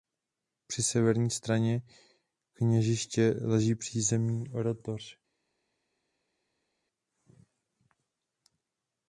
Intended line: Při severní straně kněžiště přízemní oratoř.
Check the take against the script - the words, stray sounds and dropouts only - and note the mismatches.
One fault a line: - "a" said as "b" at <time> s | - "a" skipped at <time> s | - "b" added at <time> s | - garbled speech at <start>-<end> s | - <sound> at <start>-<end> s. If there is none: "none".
- "leží" added at 3.4 s